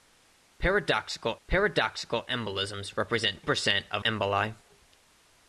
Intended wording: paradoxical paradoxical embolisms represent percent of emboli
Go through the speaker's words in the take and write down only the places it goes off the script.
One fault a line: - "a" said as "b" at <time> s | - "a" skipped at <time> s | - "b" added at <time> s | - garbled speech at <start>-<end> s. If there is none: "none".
none